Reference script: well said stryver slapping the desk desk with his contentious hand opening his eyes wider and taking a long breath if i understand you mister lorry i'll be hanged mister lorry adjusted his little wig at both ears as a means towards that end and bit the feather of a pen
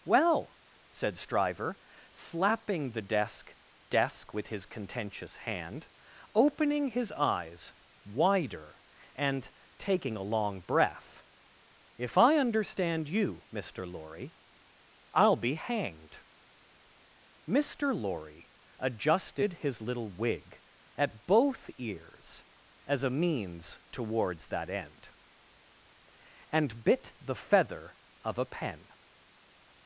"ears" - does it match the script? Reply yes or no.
yes